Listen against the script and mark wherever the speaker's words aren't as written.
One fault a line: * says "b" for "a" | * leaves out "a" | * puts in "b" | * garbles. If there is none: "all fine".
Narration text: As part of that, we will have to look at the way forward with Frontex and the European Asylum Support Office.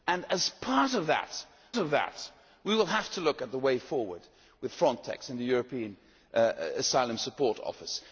* puts in "of that"